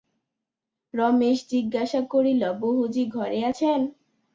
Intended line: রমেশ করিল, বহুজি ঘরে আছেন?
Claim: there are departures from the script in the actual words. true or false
true